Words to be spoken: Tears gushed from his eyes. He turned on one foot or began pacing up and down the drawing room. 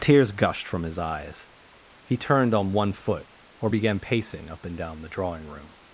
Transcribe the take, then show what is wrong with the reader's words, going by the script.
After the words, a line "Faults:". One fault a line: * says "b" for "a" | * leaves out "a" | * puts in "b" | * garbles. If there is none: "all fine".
Tears gushed from his eyes. He turned on one foot or began pacing up and down the drawing room.
Faults:
all fine